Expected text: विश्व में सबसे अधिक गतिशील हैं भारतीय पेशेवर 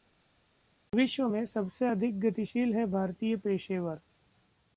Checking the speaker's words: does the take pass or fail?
pass